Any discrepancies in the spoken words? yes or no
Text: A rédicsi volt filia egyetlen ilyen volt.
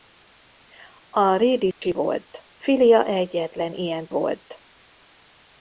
no